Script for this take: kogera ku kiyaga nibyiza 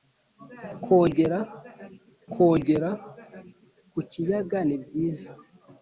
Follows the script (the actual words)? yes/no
no